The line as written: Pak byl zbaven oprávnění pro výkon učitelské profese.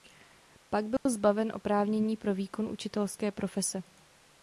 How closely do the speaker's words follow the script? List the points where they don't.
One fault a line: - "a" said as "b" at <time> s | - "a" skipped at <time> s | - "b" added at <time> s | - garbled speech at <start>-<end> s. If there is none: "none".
none